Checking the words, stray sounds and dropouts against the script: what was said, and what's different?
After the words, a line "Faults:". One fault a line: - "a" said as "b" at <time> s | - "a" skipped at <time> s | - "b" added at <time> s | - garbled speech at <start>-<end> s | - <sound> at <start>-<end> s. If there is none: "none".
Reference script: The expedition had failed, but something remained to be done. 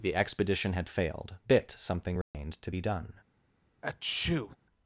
The expedition had failed, bit something remained to be done.
Faults:
- "but" said as "bit" at 1.5 s
- dropout at 2.2-2.3 s
- sneeze at 3.8-4.6 s